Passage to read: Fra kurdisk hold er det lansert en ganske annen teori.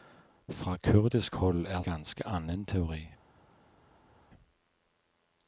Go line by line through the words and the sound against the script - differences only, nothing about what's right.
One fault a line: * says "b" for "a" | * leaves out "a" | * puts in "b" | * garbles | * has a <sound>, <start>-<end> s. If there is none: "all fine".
* leaves out "det lansert en"